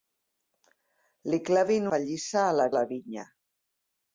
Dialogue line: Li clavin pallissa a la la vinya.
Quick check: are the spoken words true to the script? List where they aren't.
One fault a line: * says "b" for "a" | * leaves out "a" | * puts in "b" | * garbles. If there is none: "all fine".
all fine